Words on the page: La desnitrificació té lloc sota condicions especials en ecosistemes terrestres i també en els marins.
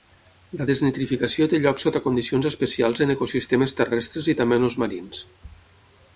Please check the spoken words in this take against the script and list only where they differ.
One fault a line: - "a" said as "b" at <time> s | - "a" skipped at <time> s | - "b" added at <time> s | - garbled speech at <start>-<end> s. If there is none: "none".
none